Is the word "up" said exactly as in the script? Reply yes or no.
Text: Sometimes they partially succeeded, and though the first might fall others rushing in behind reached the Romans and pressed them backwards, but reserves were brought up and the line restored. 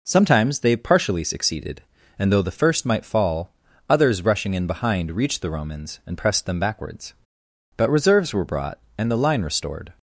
no